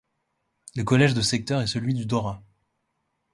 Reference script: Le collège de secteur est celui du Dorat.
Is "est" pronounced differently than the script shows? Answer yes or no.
no